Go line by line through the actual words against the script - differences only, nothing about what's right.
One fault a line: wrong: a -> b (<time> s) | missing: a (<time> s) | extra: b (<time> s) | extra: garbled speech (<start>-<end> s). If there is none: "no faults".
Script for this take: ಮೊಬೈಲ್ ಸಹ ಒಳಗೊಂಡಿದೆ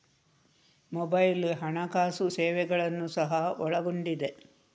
extra: ಹಣಕಾಸು ಸೇವೆಗಳನ್ನು (1.6 s)